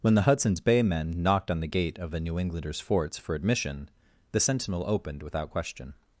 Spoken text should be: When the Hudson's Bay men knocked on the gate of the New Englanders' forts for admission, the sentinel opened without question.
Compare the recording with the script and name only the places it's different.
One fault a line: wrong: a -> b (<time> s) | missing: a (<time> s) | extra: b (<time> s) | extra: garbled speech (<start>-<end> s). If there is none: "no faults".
no faults